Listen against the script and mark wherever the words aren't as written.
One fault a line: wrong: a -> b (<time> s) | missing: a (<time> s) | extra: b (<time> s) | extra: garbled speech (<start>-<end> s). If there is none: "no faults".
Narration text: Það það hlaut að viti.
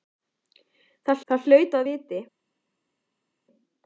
no faults